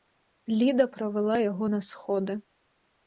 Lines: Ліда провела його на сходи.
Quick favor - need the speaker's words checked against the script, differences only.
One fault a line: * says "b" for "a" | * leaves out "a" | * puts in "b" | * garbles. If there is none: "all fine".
all fine